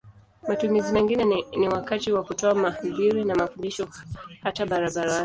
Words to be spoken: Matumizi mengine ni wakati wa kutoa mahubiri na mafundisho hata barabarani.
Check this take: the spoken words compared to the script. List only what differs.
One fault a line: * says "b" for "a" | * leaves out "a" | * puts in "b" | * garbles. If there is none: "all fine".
all fine